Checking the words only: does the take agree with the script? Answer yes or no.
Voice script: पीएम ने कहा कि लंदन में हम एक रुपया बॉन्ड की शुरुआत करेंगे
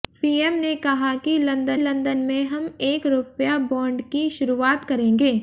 no